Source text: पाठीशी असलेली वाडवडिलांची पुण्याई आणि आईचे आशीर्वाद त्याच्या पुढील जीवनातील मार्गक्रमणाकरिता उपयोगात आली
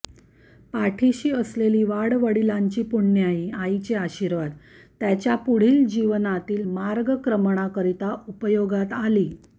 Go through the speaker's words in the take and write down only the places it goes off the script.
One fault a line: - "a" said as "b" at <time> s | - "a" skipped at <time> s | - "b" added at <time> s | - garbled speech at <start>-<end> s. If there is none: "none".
- "आणि" skipped at 3.5 s